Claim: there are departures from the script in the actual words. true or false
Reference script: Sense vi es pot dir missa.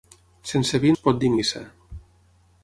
false